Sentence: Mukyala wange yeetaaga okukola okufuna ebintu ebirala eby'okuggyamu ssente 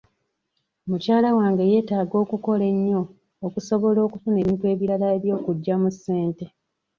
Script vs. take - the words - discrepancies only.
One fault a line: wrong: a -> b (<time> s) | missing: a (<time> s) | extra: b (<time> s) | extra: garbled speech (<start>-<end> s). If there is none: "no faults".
extra: ennyo okusobola (2.7 s)